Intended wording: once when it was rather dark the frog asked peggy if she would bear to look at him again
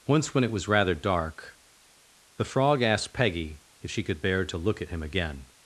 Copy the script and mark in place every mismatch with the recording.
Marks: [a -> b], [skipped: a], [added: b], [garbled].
once when it was rather dark the frog asked peggy if she [would -> could] bear to look at him again